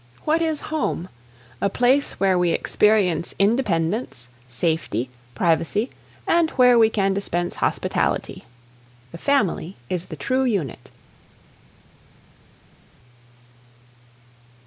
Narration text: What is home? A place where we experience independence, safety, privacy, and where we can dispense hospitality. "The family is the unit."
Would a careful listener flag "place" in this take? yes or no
no